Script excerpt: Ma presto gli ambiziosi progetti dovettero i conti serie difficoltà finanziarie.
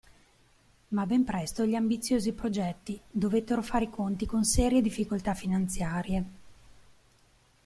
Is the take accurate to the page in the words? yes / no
no